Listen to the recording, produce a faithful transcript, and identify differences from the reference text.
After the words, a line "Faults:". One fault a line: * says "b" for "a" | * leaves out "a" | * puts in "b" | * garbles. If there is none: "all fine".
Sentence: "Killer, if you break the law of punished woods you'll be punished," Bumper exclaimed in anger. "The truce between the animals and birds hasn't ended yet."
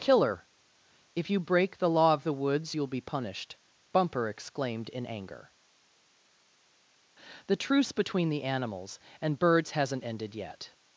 "Killer, if you break the law of the woods you'll be punished," Bumper exclaimed in anger. "The truce between the animals and birds hasn't ended yet."
Faults:
* says "the" for "punished"